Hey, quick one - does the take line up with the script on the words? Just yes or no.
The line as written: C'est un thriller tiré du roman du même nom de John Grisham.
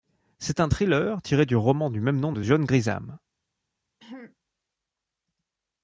yes